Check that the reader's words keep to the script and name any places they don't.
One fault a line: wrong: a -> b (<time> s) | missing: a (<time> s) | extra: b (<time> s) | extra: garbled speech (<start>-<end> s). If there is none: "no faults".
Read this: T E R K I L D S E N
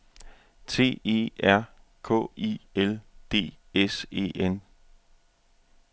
no faults